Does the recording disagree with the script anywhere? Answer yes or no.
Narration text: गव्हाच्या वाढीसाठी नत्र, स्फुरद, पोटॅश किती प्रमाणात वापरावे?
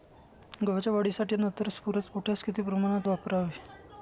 no